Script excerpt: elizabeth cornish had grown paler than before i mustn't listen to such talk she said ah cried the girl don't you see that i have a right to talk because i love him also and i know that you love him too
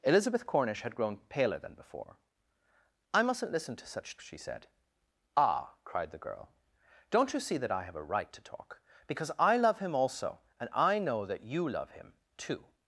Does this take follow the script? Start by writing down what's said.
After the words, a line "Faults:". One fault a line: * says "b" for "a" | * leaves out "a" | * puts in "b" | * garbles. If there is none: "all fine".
elizabeth cornish had grown paler than before i mustn't listen to such she said ah cried the girl don't you see that i have a right to talk because i love him also and i know that you love him too
Faults:
* leaves out "talk"